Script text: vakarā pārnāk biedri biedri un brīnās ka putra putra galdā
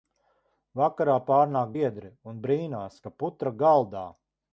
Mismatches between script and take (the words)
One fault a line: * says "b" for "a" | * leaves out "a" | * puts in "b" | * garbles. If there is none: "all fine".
* leaves out "biedri"
* leaves out "putra"